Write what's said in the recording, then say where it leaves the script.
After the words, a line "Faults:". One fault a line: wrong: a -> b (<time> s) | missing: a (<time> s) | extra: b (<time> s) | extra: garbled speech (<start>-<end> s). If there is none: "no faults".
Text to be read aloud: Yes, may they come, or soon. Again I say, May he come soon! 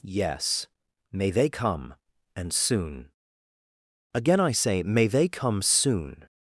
Yes, may they come, and soon. Again I say, May they come soon!
Faults:
wrong: or -> and (2.4 s)
wrong: he -> they (5.1 s)